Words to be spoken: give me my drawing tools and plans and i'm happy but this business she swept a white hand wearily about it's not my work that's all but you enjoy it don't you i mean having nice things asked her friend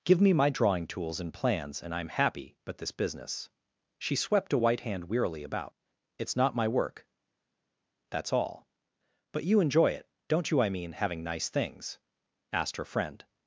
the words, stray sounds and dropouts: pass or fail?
pass